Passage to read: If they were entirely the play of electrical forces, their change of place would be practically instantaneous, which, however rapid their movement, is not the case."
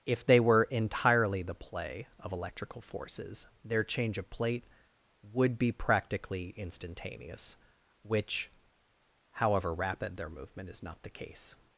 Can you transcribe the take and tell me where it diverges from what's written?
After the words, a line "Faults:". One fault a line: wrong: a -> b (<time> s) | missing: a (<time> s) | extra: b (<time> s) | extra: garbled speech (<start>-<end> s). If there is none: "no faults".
If they were entirely the play of electrical forces, their change of plate would be practically instantaneous, which, however rapid their movement, is not the case."
Faults:
wrong: place -> plate (4.3 s)